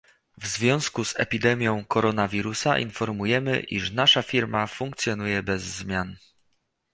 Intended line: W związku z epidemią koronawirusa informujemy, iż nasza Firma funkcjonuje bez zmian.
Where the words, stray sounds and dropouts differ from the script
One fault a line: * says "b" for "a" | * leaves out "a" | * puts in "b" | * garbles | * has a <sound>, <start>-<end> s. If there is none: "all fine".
all fine